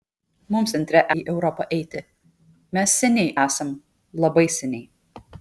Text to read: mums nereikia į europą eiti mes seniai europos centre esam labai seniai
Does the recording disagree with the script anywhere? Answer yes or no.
yes